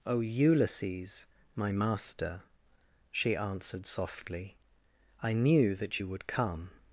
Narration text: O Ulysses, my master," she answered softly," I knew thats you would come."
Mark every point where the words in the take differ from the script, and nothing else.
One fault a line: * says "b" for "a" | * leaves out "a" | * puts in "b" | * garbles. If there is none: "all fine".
* says "that" for "thats"